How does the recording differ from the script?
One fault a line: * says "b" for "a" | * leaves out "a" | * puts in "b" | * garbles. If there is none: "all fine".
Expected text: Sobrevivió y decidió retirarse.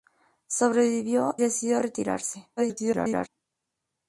* leaves out "y"
* garbles